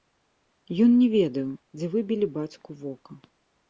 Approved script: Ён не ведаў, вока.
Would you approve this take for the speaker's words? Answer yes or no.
no